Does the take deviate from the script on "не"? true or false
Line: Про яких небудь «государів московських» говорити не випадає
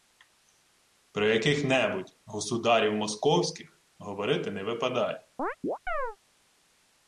false